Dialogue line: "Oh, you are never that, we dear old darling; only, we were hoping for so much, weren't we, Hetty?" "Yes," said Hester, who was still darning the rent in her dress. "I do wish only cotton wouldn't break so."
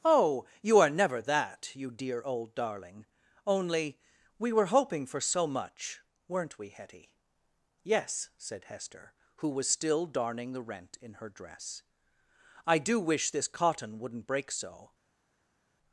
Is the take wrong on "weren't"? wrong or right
right